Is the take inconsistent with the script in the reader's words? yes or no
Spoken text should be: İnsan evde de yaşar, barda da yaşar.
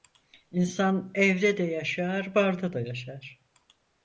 no